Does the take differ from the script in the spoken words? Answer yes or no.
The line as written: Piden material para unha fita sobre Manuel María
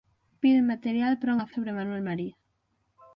yes